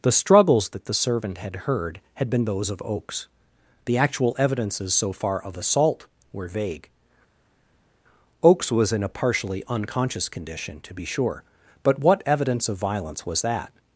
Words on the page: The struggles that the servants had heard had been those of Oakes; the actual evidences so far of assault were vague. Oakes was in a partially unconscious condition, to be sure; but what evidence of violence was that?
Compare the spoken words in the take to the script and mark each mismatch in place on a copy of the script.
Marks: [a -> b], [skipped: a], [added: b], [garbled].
The struggles that the [servants -> servant] had heard had been those of Oakes; the actual evidences so far of assault were vague. Oakes was in a partially unconscious condition, to be sure; but what evidence of violence was that?